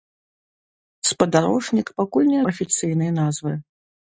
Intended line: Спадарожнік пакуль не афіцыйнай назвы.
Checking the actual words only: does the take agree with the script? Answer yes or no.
yes